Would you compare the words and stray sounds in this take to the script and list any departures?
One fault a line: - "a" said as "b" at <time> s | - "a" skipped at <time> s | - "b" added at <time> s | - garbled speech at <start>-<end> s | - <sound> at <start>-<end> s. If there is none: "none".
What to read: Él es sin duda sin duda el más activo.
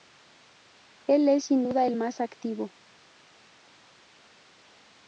- "sin duda" skipped at 1.9 s